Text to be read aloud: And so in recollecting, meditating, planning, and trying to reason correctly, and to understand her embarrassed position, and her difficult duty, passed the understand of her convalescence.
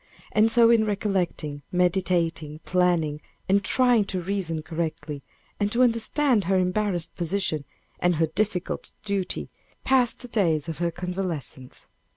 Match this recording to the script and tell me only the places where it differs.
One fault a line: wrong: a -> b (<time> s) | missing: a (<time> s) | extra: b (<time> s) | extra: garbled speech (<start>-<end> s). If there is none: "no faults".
wrong: understand -> days (10.3 s)